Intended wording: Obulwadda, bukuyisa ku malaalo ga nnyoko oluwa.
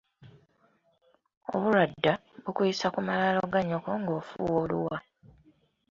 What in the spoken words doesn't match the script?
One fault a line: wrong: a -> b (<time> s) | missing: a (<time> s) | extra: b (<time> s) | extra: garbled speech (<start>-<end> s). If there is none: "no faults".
extra: ng'ofuuwa (4.0 s)